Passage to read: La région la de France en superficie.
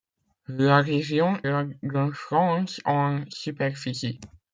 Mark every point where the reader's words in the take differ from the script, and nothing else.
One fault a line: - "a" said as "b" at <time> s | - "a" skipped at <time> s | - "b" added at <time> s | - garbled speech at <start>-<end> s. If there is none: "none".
none